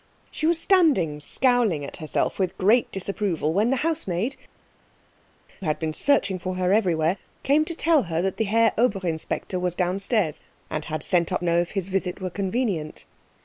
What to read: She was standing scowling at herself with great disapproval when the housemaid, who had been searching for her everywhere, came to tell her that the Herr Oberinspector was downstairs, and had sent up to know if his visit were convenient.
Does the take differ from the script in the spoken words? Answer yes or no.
yes